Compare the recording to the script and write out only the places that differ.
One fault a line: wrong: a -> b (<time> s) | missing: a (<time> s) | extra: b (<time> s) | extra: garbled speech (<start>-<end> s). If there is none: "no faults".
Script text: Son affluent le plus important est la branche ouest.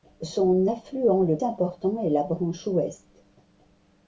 missing: plus (1.4 s)